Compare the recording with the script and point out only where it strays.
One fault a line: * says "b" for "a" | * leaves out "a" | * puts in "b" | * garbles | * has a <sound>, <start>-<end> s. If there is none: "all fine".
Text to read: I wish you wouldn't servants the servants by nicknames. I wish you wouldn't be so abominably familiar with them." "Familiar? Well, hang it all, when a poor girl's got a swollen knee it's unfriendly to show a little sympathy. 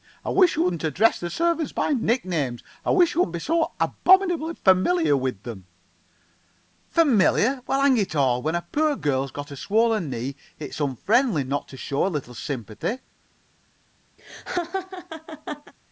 * says "address" for "servants"
* puts in "not"
* has a laugh, 14.2-15.7 s